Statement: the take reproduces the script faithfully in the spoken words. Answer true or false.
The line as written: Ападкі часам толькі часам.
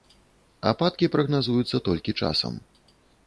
false